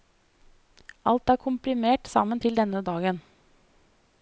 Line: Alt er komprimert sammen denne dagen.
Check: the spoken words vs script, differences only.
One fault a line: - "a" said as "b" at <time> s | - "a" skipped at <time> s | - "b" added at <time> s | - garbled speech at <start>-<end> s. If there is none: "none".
- "til" added at 2.4 s